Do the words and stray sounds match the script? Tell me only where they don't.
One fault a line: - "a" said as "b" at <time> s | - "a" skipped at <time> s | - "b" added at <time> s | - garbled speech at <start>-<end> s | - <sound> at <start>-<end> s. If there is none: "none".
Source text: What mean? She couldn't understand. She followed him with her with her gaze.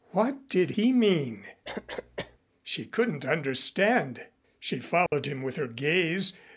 - "did he" added at 0.5 s
- cough at 1.6-2.4 s
- dropout at 5.1-5.1 s
- "with her" skipped at 5.7 s